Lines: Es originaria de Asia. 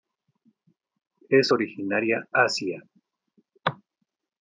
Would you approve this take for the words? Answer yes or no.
no